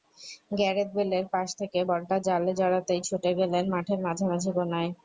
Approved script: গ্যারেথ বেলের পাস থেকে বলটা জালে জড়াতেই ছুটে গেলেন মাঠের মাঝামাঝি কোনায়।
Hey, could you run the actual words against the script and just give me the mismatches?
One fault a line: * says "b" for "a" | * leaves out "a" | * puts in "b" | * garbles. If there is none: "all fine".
all fine